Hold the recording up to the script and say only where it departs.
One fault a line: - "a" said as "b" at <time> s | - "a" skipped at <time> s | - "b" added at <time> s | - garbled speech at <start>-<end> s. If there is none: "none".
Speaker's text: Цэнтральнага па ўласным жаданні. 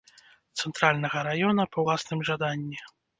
- "раёна" added at 1.3 s